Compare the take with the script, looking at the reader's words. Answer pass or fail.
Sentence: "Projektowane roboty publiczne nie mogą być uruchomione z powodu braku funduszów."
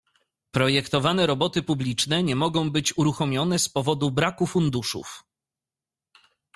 pass